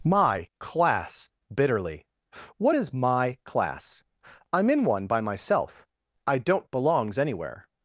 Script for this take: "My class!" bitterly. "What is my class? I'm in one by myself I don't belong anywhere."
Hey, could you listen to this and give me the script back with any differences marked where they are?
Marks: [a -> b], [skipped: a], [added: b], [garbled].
"My class!" bitterly. "What is my class? I'm in one by myself I don't [belong -> belongs] anywhere."